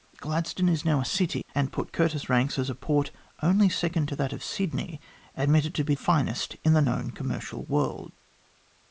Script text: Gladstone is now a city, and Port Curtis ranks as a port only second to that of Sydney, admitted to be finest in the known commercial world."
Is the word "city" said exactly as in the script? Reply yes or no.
yes